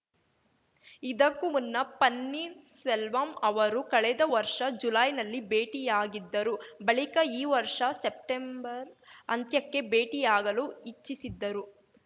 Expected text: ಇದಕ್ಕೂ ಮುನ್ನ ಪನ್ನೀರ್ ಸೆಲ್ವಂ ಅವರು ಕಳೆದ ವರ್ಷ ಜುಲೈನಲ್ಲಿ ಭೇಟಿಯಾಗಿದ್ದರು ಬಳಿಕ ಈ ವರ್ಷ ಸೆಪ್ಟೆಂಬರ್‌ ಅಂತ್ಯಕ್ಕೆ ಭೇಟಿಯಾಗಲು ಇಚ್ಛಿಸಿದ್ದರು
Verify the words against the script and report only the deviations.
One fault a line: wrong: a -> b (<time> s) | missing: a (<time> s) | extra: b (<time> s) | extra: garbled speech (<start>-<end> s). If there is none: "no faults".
no faults